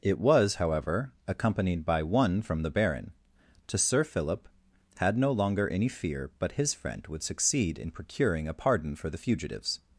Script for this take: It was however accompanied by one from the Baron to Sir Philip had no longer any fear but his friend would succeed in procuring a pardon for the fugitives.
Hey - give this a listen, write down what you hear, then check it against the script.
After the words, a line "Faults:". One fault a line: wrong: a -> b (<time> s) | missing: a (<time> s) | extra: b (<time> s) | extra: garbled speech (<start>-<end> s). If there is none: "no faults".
It was however accompanied by one from the Baron to Sir Philip had no longer any fear but his friend would succeed in procuring a pardon for the fugitives.
Faults:
no faults